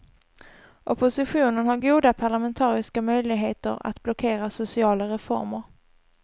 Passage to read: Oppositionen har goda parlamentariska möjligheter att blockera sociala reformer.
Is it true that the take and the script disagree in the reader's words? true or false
false